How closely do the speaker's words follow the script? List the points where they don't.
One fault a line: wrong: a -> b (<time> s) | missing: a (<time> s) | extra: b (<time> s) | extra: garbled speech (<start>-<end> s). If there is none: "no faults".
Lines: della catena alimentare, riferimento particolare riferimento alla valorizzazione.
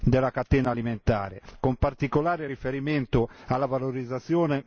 wrong: riferimento -> con (1.6 s)